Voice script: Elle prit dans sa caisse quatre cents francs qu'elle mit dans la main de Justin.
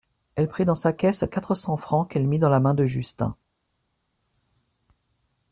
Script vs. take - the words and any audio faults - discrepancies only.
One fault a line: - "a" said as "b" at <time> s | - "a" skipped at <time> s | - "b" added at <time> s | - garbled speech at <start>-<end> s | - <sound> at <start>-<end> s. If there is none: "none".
none